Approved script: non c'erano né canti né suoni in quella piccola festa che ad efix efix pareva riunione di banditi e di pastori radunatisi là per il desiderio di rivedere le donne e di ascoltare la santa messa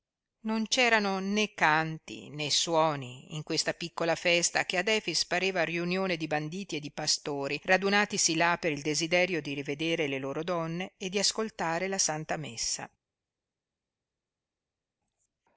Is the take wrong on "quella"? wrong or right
wrong